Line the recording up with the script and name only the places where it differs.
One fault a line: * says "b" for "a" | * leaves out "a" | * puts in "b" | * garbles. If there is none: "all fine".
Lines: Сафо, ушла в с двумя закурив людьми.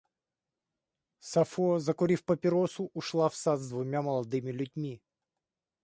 * puts in "закурив папиросу"
* puts in "сад"
* says "молодыми" for "закурив"